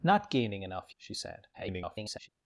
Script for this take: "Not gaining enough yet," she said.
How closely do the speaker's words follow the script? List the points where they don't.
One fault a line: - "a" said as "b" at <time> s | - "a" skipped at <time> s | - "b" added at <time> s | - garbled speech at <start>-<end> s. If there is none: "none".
- "yet" skipped at 0.9 s
- garbled speech at 1.5-2.3 s